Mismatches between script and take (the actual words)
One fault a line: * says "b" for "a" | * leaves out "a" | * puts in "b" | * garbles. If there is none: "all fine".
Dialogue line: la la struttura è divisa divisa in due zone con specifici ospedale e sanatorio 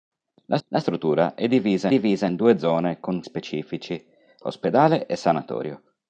all fine